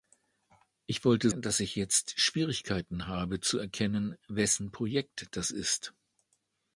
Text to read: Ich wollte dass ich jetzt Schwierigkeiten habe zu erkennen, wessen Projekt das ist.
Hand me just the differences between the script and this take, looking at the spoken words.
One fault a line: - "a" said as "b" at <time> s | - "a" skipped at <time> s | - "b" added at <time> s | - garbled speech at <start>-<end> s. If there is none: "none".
none